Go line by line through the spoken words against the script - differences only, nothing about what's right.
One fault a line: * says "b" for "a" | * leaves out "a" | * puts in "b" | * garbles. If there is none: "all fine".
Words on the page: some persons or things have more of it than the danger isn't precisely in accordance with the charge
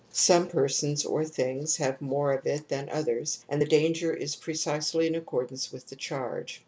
* puts in "others and"
* says "is" for "isn't"